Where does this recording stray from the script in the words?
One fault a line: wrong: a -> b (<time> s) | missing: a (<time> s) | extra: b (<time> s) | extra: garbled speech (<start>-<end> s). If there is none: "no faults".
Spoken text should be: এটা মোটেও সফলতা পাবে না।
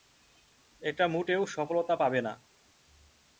no faults